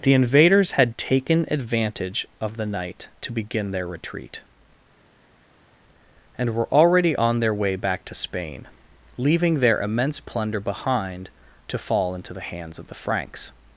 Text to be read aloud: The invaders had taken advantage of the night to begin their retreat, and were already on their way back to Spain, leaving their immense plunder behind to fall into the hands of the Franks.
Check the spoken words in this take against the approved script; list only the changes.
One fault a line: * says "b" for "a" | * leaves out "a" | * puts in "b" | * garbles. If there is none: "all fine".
all fine